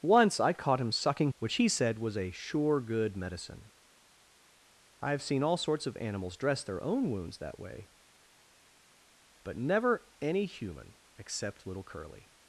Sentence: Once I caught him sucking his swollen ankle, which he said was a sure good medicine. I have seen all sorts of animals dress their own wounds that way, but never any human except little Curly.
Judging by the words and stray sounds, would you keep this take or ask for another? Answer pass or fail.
fail